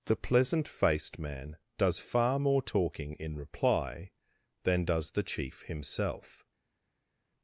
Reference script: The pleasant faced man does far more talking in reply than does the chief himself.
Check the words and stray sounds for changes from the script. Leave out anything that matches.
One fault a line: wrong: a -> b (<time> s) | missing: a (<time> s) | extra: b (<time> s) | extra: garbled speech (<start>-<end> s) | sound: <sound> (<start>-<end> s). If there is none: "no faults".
no faults